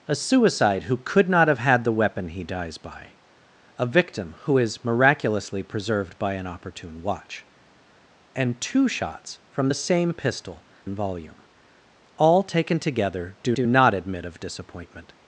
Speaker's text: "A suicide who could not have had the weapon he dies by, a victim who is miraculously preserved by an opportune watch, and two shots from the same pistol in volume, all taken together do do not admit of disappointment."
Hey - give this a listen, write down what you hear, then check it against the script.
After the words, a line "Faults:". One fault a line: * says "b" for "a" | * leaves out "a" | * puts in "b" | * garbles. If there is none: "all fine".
"A suicide who could not have had the weapon he dies by, a victim who is miraculously preserved by an opportune watch, and two shots from the same pistol in volume, all taken together do do not admit of disappointment."
Faults:
all fine